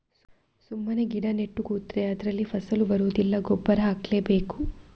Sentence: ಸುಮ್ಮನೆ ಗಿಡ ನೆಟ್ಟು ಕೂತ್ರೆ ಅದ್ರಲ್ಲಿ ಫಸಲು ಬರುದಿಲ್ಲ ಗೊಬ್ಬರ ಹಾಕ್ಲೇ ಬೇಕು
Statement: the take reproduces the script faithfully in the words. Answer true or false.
true